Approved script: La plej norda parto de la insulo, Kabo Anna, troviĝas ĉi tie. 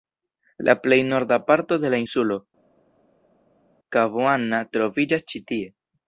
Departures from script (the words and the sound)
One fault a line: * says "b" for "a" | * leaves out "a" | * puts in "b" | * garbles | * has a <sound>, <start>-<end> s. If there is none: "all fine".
all fine